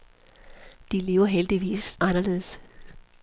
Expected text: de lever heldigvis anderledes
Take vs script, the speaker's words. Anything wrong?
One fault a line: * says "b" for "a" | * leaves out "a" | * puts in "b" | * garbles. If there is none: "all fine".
all fine